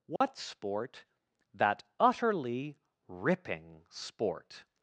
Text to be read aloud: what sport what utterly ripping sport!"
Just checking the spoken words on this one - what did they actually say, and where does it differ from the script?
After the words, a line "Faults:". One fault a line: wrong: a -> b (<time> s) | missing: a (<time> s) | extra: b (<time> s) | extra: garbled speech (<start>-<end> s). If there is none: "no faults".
what sport that utterly ripping sport!"
Faults:
wrong: what -> that (1.5 s)